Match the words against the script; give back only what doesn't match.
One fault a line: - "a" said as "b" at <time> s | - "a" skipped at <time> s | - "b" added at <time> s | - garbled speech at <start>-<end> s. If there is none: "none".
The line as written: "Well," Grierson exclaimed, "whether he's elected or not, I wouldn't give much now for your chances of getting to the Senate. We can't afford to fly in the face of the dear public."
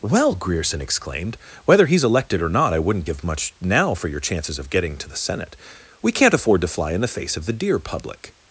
none